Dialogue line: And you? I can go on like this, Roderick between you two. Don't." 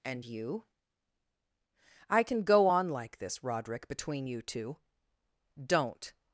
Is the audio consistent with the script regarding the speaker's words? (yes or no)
yes